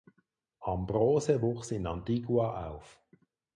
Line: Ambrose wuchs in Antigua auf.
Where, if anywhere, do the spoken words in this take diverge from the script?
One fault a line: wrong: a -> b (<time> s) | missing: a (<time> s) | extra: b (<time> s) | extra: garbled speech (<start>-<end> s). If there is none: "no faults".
no faults